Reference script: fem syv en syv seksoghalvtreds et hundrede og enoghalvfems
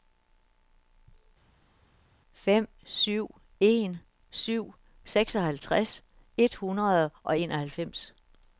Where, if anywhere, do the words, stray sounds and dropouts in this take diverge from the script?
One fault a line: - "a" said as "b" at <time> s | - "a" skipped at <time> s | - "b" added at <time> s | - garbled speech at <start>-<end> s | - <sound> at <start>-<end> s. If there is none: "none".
none